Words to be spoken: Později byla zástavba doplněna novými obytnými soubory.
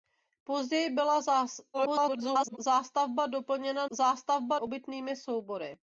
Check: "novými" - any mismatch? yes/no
yes